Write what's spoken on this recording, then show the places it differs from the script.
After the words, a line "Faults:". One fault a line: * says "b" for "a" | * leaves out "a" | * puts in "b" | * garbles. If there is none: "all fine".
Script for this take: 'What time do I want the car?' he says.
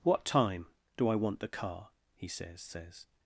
'What time do I want the car?' he says says.
Faults:
* puts in "says"